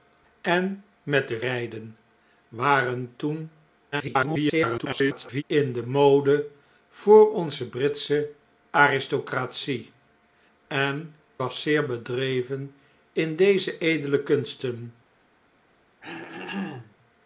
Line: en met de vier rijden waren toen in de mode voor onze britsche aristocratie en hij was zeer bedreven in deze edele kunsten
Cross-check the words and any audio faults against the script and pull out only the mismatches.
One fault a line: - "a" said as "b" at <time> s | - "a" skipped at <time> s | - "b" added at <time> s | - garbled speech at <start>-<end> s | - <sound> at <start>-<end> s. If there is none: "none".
- "vier" skipped at 1.4 s
- garbled speech at 3.9-5.4 s
- "hij" skipped at 11.1 s
- throat clearing at 16.0-17.0 s